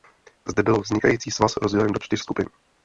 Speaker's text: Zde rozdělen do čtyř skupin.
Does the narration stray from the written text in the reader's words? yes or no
yes